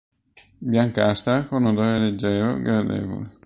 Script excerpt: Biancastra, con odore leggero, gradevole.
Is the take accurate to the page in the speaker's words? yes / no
yes